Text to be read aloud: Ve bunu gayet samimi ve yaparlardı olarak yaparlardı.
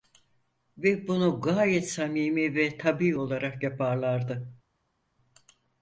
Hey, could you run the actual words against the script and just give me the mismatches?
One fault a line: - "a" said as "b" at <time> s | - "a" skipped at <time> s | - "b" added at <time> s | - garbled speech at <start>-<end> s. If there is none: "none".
- "yaparlardı" said as "tabii" at 2.8 s